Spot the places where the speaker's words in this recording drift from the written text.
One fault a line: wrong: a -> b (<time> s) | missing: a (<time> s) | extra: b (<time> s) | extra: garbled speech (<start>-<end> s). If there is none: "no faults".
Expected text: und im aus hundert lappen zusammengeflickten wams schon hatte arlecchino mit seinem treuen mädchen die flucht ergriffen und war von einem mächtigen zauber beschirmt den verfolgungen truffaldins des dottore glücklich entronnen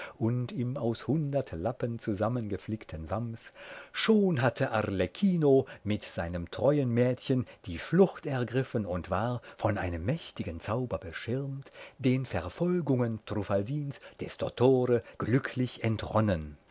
no faults